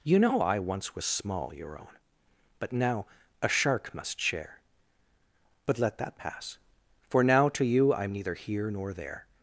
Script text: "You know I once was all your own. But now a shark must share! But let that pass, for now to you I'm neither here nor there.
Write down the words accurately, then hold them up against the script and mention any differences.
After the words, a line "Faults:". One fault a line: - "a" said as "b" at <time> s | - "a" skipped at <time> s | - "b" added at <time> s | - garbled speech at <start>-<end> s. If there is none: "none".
"You know I once was small your own. But now a shark must share! But let that pass, for now to you I'm neither here nor there.
Faults:
- "all" said as "small" at 1.1 s